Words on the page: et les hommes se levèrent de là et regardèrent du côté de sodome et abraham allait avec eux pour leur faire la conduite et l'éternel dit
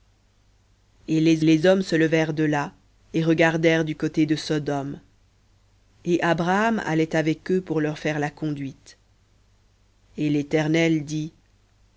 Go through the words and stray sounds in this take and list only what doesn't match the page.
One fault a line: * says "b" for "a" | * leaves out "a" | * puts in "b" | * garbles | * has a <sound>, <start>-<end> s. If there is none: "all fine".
* puts in "les"